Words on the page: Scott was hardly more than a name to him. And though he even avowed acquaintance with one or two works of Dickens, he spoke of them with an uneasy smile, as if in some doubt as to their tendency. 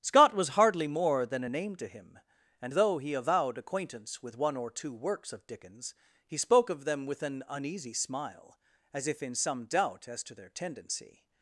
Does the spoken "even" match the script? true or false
false